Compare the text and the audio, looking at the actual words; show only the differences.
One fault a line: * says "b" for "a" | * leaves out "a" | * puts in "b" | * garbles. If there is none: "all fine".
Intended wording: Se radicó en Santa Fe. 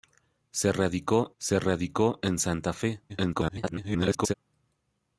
* puts in "se radicó"
* garbles